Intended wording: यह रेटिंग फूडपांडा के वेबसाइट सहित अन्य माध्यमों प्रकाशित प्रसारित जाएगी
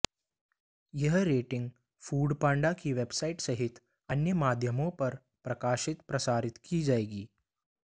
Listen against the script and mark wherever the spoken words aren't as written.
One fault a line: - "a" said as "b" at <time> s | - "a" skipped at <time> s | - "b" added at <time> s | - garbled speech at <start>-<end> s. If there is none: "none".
- "के" said as "की" at 2.7 s
- "पर" added at 4.9 s
- "की" added at 6.7 s